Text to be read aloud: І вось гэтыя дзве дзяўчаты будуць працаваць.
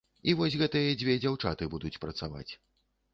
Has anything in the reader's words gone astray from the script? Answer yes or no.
no